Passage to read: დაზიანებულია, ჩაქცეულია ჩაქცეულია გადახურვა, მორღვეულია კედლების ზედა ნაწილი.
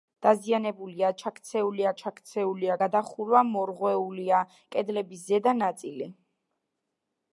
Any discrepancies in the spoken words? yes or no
no